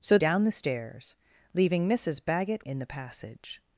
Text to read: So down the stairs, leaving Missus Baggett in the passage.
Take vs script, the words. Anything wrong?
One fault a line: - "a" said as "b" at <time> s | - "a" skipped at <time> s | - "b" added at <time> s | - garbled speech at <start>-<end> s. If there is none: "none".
none